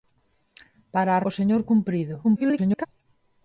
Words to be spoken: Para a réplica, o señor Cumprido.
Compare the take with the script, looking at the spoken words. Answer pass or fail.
fail